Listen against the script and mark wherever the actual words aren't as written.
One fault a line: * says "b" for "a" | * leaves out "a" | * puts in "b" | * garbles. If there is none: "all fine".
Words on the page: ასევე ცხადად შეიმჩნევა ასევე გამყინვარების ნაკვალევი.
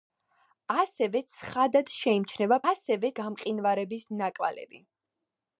all fine